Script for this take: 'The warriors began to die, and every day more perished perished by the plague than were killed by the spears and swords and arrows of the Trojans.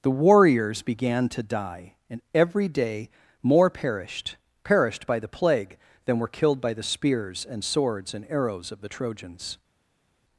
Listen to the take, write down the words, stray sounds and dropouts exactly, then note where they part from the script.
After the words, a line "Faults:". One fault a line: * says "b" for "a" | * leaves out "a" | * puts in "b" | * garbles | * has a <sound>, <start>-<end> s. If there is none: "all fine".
'The warriors began to die, and every day more perished perished by the plague than were killed by the spears and swords and arrows of the Trojans.
Faults:
all fine